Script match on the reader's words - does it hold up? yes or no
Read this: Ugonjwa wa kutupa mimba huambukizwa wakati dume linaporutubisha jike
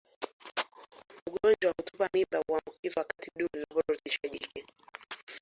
yes